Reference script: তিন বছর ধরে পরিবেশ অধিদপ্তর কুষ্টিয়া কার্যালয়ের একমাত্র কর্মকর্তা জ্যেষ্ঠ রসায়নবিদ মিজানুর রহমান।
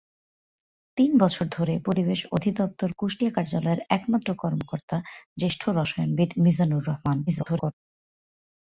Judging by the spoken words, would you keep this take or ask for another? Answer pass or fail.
fail